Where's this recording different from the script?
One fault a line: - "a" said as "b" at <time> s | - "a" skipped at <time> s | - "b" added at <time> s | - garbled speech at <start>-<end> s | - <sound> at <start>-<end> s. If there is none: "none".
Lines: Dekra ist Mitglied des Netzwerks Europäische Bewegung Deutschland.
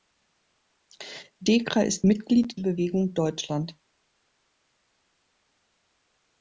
- "des Netzwerks Europäische" skipped at 2.6 s